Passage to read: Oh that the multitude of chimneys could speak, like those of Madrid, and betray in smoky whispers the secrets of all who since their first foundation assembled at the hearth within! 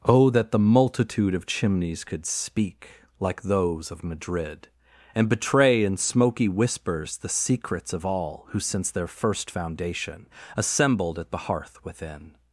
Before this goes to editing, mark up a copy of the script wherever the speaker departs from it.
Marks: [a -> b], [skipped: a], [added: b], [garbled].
Oh that the multitude of chimneys could speak, like those of Madrid, and betray in smoky whispers the secrets of all who since their first foundation assembled at the hearth within!